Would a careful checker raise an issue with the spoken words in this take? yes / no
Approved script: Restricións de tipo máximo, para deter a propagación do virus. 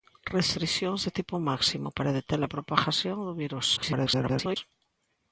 yes